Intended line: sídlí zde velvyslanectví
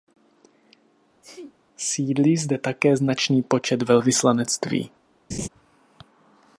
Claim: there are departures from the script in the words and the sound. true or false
true